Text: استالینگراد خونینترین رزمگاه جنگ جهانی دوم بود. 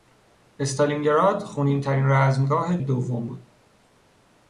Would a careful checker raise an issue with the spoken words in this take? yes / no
yes